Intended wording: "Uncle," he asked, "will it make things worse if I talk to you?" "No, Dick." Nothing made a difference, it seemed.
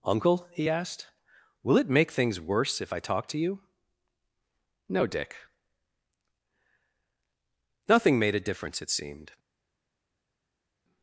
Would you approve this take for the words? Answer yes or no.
yes